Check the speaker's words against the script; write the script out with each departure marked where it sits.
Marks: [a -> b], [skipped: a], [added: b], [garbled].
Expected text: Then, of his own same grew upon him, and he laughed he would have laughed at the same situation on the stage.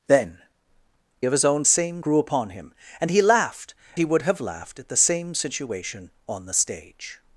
Then, of his own same grew upon him, and he laughed he would have laughed at the same situation on the stage.